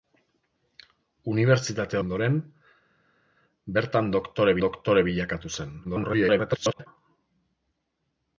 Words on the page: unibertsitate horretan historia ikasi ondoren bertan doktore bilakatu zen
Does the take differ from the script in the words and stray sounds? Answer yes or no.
yes